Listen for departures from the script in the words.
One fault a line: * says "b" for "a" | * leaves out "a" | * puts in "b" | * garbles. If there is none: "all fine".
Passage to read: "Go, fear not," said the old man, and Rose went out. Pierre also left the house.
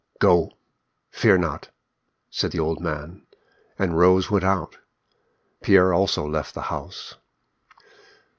all fine